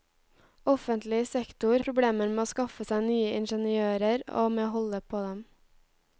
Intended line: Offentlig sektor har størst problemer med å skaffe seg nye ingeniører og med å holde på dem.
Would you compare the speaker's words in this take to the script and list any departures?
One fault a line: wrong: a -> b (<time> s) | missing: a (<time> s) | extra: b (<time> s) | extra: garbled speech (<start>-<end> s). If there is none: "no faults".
missing: har størst (1.8 s)